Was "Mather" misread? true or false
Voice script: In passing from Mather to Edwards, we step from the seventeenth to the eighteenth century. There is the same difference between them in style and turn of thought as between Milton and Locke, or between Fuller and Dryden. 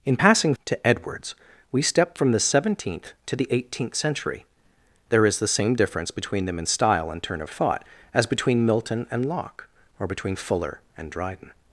true